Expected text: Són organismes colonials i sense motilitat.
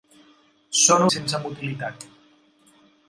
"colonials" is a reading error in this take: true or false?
true